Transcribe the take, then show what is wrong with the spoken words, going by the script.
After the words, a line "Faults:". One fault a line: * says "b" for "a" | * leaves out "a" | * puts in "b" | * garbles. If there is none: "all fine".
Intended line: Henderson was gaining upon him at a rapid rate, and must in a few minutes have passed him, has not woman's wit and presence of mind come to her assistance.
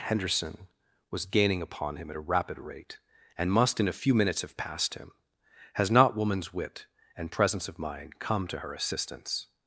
Henderson was gaining upon him at a rapid rate, and must in a few minutes have passed him, has not woman's wit and presence of mind come to her assistance.
Faults:
all fine